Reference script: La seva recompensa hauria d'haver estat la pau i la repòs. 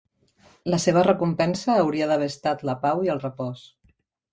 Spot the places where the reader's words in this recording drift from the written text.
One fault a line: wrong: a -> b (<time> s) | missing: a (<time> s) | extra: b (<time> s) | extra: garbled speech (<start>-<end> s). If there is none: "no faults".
wrong: la -> el (3.2 s)